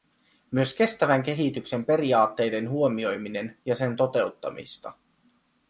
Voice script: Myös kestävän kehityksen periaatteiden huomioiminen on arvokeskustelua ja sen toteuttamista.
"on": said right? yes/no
no